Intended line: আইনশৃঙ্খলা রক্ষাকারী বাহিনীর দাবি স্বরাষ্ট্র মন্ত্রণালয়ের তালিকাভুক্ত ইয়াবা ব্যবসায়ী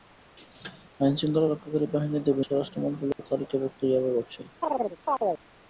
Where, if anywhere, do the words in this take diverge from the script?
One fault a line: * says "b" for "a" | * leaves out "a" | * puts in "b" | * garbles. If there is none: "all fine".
all fine